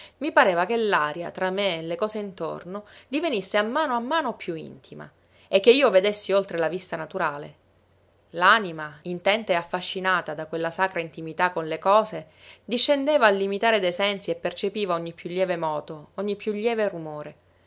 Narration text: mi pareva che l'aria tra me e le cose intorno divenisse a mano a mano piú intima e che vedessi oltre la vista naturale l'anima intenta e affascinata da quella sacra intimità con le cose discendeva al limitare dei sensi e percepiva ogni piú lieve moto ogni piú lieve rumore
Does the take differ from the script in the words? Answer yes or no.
yes